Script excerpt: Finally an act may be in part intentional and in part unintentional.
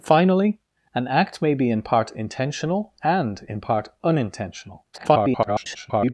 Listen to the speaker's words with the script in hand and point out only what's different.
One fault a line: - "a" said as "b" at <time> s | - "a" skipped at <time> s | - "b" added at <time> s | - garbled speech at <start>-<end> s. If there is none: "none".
- garbled speech at 4.9-6.1 s